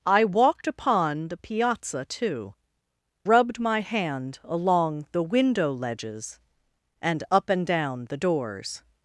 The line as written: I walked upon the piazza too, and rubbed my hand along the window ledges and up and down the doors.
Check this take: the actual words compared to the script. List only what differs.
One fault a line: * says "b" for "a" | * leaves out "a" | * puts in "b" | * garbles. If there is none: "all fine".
* leaves out "and"